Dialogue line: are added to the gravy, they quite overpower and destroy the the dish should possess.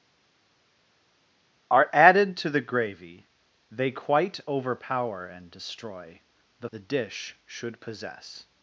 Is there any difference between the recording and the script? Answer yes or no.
no